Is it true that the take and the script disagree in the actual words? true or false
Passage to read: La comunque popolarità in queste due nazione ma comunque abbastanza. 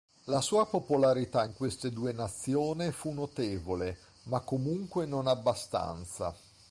true